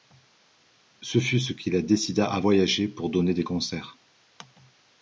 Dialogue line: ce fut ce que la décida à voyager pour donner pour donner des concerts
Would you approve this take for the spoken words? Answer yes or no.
no